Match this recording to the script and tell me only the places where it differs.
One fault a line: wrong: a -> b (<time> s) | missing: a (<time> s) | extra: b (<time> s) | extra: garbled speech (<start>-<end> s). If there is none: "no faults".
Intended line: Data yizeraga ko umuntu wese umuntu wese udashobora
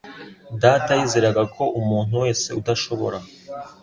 missing: umuntu wese (2.5 s)